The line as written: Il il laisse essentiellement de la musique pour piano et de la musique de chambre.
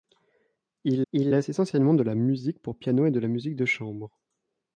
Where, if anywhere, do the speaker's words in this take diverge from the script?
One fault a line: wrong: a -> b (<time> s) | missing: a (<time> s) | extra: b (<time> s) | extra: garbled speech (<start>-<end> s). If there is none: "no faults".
no faults